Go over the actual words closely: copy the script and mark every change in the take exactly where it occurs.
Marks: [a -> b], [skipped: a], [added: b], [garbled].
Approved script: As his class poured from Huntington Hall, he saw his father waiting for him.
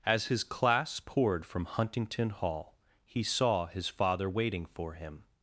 As his class poured from Huntington Hall, he saw his father waiting for him.